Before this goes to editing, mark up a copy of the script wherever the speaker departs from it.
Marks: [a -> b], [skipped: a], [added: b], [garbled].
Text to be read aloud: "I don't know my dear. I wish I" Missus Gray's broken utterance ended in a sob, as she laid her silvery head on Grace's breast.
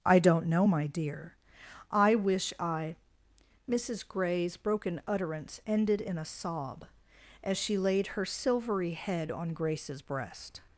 "I don't know my dear. I wish I" Missus Gray's broken utterance ended in a sob, as she laid her silvery head on Grace's breast.